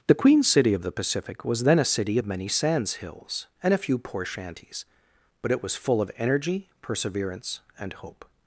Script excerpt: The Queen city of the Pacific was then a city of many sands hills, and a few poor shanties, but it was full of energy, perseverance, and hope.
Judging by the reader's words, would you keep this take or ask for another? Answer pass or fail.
pass